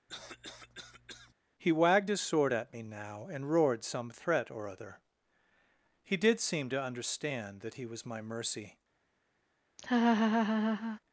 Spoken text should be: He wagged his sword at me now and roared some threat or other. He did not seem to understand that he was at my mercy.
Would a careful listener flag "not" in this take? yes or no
yes